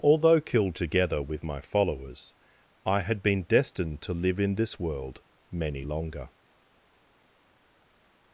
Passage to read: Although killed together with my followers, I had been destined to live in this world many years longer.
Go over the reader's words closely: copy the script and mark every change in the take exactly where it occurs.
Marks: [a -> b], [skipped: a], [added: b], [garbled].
Although killed together with my followers, I had been destined to live in this world many [skipped: years] longer.